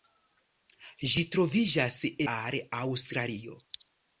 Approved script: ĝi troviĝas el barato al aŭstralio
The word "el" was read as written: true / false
false